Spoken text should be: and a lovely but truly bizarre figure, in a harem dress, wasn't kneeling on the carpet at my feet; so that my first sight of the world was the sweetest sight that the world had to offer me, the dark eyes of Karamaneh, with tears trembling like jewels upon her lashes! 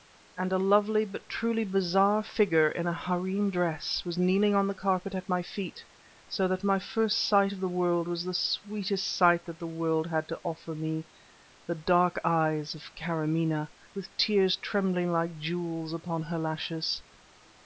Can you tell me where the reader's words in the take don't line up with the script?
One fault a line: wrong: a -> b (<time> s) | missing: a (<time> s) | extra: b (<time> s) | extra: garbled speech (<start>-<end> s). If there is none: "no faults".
wrong: wasn't -> was (4.0 s)